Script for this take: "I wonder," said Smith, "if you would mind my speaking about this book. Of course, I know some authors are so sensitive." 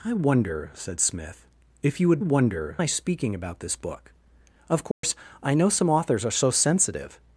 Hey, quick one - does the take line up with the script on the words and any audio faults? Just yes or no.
no